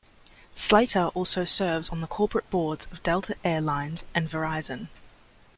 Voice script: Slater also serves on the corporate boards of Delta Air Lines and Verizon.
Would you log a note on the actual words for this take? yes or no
no